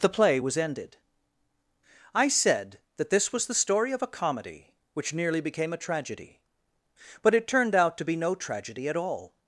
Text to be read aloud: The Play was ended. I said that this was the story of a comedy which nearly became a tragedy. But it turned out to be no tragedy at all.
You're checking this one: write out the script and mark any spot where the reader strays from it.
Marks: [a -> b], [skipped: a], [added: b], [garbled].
The Play was ended. I said that this was the story of a comedy which nearly became a tragedy. But it turned out to be no tragedy at all.